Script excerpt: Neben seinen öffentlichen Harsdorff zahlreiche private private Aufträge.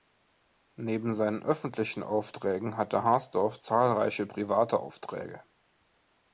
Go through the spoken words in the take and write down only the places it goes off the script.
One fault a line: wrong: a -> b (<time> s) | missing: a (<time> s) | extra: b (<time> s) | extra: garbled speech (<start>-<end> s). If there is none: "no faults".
extra: Aufträgen hatte (2.0 s)
missing: private (4.8 s)